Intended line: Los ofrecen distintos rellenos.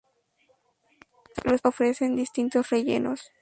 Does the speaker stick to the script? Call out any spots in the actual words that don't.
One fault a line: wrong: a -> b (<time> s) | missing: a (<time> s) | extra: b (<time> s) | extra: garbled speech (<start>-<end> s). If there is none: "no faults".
no faults